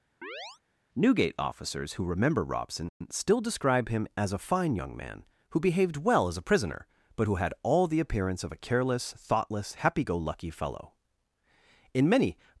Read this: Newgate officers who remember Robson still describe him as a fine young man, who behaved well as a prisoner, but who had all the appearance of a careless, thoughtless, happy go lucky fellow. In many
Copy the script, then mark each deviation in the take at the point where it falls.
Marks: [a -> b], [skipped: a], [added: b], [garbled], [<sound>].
[chirp] Newgate officers who remember Robson still describe him as a fine young man, who behaved well as a prisoner, but who had all the appearance of a careless, thoughtless, happy go lucky fellow. In many